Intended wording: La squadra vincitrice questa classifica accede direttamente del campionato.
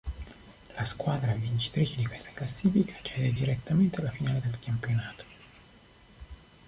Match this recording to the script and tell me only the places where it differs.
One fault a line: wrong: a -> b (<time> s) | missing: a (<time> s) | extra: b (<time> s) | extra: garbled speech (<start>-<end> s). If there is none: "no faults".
extra: di (1.9 s)
extra: alla finale (4.0 s)